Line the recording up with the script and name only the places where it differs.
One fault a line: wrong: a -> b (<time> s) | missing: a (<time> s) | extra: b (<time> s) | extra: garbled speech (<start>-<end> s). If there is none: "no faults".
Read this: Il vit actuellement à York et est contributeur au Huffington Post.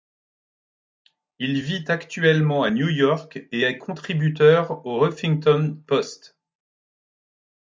extra: New (2.7 s)